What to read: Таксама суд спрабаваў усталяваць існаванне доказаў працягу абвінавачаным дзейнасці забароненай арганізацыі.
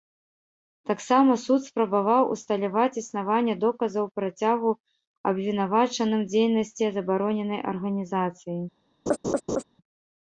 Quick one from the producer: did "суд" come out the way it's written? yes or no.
yes